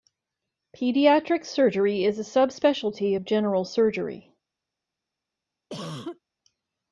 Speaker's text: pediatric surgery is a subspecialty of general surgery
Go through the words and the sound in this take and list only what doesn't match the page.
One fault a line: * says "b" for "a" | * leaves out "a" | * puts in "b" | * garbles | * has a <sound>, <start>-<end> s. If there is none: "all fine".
* has a cough, 5.7-6.2 s